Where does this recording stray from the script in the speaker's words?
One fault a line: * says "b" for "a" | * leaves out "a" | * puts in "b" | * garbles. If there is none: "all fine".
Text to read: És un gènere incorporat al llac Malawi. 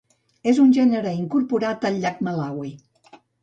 all fine